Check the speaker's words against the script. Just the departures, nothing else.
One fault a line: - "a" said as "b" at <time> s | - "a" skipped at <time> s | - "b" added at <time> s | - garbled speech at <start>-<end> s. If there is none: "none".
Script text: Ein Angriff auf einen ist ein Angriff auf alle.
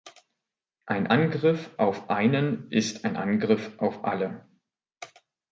none